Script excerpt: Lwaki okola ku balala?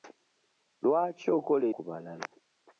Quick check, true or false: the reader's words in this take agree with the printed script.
true